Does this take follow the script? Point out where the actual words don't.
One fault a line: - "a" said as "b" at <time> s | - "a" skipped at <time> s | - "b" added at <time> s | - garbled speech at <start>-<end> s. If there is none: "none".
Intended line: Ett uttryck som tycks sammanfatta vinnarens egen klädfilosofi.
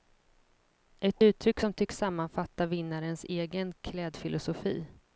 none